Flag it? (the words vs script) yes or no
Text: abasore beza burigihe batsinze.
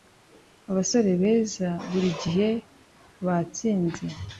no